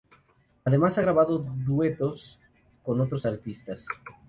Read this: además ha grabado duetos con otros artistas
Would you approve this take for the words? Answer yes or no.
yes